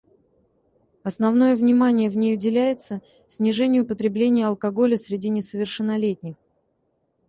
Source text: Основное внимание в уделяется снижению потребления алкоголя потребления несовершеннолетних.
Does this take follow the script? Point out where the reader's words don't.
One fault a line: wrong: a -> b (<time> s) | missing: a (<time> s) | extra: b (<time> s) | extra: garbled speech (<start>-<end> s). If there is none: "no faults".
extra: ней (2.2 s)
wrong: потребления -> среди (5.0 s)